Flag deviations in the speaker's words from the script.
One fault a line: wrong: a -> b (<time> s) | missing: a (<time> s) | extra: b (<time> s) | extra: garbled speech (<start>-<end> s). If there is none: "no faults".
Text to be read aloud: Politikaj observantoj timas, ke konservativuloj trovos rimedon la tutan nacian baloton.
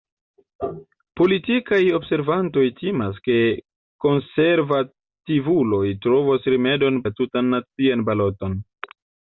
no faults